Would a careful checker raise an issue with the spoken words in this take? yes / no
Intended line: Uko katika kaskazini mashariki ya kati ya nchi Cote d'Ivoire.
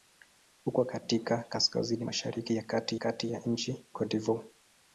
yes